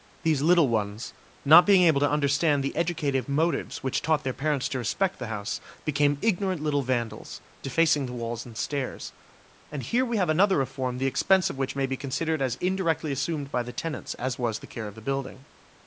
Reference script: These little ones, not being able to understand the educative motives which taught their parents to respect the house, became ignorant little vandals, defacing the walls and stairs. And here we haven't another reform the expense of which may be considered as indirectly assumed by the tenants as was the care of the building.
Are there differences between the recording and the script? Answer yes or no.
yes